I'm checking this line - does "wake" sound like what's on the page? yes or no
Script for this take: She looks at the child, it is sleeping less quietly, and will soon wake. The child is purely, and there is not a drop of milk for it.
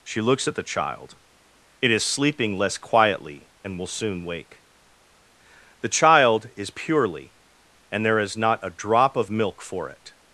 yes